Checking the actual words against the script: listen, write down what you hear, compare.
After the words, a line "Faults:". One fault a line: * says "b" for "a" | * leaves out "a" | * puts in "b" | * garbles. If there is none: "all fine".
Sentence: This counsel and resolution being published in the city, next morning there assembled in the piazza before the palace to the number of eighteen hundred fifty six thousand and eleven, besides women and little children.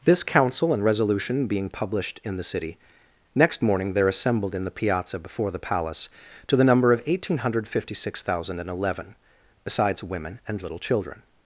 This counsel and resolution being published in the city, next morning there assembled in the piazza before the palace to the number of eighteen hundred fifty six thousand and eleven, besides women and little children.
Faults:
all fine